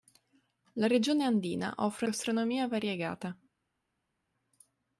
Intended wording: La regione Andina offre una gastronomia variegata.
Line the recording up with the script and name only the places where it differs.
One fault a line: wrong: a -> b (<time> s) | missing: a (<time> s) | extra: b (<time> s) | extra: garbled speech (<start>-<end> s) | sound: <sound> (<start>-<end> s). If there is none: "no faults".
missing: una (2.1 s)